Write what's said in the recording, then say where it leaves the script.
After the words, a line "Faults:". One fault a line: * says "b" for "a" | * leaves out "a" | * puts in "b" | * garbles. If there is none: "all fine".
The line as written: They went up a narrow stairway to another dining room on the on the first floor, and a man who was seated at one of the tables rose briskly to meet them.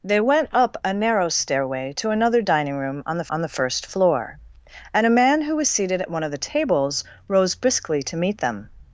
They went up a narrow stairway to another dining room on the on the first floor, and a man who was seated at one of the tables rose briskly to meet them.
Faults:
all fine